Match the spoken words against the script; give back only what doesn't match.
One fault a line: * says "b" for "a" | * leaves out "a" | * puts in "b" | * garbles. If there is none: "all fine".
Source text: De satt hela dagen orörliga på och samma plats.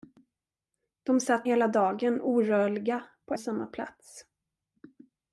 all fine